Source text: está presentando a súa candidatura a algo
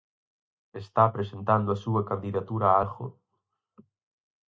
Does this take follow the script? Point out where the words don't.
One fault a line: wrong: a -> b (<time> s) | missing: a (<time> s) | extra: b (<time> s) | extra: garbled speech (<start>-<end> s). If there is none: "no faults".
no faults